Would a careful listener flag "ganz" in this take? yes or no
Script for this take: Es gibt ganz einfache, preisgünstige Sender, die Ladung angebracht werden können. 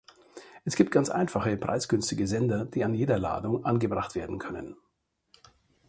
no